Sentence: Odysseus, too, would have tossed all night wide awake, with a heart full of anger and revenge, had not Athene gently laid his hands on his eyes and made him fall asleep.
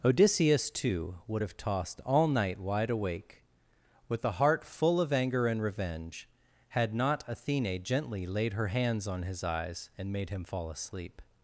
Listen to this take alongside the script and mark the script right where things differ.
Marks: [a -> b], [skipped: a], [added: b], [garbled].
Odysseus, too, would have tossed all night wide awake, with a heart full of anger and revenge, had not Athene gently laid [his -> her] hands on his eyes and made him fall asleep.